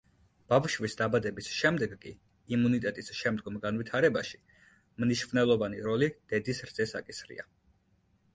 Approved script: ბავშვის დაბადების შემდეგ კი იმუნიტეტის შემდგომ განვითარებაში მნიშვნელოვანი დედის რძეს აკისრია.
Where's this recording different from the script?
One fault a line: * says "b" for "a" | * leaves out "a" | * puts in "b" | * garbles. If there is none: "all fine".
* puts in "როლი"